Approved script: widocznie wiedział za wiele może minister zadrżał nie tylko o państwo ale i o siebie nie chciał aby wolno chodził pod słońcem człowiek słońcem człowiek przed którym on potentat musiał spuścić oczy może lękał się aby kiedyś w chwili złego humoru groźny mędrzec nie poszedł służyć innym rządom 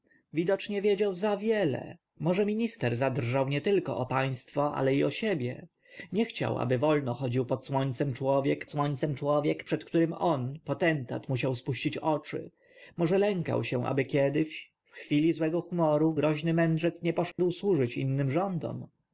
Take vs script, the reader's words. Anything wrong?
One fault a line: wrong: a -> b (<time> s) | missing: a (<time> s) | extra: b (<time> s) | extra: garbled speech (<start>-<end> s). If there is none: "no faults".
no faults